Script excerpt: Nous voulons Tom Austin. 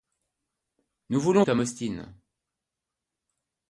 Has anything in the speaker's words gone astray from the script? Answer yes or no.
no